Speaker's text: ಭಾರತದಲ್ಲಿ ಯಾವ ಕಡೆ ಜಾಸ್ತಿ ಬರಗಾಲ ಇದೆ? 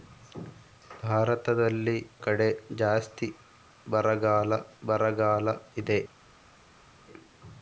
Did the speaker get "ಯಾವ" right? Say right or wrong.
wrong